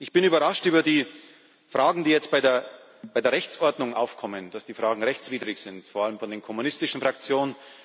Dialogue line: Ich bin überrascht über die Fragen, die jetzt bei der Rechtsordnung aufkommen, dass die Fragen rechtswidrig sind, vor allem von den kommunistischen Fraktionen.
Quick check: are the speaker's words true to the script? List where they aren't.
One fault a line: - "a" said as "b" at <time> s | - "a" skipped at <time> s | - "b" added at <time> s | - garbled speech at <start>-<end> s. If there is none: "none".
none